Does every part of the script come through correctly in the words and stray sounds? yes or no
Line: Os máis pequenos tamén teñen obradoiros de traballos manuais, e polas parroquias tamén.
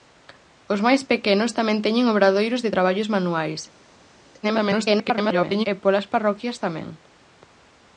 no